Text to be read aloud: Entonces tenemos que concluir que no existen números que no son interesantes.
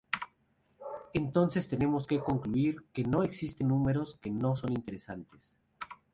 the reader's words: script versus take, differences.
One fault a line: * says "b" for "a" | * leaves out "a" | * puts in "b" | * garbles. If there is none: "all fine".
all fine